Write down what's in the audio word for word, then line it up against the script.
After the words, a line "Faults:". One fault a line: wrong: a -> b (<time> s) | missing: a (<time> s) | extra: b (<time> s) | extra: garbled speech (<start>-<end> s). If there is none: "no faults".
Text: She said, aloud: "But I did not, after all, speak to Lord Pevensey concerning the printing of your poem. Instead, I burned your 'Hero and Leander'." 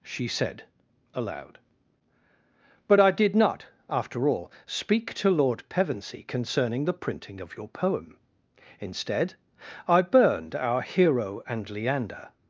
She said, aloud: "But I did not, after all, speak to Lord Pevensey concerning the printing of your poem. Instead, I burned our 'Hero and Leander'."
Faults:
wrong: your -> our (10.5 s)